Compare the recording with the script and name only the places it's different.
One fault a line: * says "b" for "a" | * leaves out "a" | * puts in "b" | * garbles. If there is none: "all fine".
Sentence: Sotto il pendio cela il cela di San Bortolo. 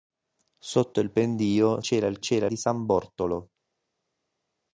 all fine